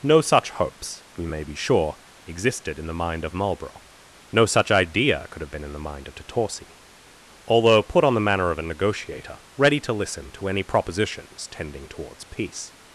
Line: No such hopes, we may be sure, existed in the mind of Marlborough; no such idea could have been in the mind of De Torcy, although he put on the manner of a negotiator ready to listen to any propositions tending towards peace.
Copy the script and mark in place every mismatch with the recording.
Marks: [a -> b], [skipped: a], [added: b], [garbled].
No such hopes, we may be sure, existed in the mind of Marlborough; no such idea could have been in the mind of De Torcy, although [skipped: he] put on the manner of a negotiator ready to listen to any propositions tending towards peace.